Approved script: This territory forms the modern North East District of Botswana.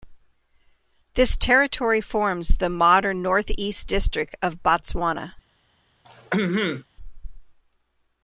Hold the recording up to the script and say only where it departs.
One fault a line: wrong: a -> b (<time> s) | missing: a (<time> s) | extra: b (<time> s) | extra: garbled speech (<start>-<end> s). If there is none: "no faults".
no faults